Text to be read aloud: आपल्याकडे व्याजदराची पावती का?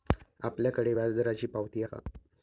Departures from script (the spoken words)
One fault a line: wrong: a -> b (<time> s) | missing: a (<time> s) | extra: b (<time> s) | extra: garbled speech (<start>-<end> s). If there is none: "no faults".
no faults